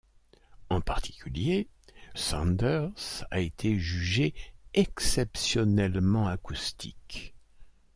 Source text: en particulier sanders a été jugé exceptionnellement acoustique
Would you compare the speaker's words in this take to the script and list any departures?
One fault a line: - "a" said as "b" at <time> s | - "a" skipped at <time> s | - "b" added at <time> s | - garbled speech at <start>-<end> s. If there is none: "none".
none